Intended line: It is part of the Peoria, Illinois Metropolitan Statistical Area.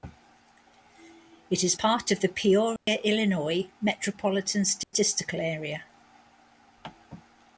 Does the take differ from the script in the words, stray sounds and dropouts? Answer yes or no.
yes